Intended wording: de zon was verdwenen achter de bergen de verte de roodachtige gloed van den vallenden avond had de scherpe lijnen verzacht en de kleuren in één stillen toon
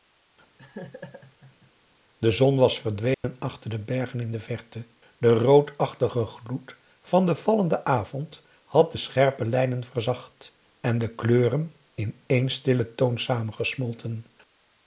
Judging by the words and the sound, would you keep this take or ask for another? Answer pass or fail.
fail